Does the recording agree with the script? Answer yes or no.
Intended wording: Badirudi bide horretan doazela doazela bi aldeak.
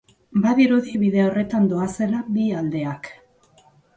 no